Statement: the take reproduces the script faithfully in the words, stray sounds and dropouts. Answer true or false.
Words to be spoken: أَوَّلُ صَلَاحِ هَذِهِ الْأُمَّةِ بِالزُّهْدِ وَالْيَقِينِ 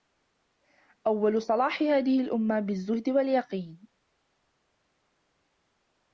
true